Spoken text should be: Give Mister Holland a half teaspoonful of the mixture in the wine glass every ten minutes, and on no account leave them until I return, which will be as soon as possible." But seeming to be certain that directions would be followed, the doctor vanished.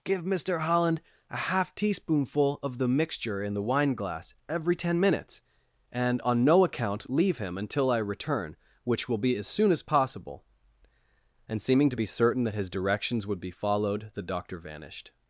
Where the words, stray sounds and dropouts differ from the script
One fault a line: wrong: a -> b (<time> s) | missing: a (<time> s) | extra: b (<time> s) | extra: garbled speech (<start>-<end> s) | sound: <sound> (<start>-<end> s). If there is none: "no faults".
wrong: them -> him (7.4 s)
wrong: But -> And (11.5 s)
extra: his (12.5 s)